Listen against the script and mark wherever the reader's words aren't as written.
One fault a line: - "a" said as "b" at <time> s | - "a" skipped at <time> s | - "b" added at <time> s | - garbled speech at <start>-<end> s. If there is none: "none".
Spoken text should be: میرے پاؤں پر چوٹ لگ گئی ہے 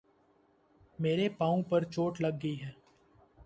none